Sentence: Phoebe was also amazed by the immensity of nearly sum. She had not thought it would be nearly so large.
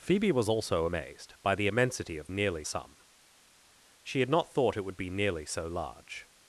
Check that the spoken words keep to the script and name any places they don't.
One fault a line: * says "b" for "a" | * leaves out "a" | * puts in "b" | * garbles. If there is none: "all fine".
all fine